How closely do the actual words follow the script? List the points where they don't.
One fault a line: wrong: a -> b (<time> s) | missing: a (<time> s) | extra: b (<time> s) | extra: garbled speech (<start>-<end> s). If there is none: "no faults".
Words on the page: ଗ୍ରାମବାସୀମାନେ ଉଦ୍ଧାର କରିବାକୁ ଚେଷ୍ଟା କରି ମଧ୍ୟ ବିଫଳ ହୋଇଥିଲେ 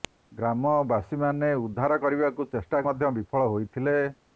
missing: କରି (2.8 s)